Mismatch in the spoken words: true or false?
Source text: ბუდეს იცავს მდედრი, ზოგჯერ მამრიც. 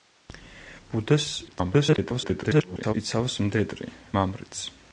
true